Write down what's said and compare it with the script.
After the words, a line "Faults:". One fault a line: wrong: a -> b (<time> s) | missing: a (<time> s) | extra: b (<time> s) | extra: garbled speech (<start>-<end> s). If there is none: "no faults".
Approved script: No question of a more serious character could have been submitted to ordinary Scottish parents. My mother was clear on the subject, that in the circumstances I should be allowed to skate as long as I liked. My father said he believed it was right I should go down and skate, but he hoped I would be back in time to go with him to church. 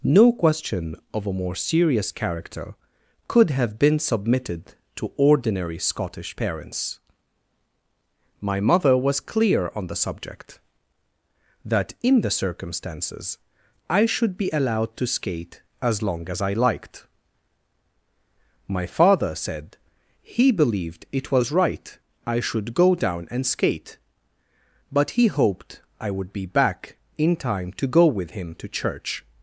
No question of a more serious character could have been submitted to ordinary Scottish parents. My mother was clear on the subject, that in the circumstances I should be allowed to skate as long as I liked. My father said he believed it was right I should go down and skate, but he hoped I would be back in time to go with him to church.
Faults:
no faults